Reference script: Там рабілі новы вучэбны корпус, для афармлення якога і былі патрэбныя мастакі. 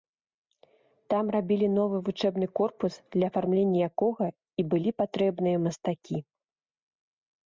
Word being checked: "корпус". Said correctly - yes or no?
yes